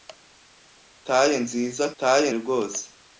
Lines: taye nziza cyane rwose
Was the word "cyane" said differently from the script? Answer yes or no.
yes